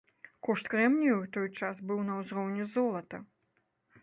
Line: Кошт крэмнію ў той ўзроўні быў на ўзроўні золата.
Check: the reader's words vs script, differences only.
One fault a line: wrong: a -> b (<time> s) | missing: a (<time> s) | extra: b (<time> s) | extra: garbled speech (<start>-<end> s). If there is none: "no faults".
wrong: ўзроўні -> час (1.6 s)